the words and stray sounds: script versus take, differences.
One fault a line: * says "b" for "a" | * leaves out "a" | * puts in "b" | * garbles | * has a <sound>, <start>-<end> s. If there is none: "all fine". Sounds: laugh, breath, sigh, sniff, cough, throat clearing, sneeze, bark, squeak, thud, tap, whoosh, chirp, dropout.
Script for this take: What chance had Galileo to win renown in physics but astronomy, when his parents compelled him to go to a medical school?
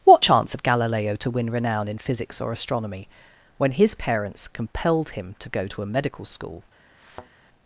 * says "or" for "but"
* has a thud, 7.0-7.3 s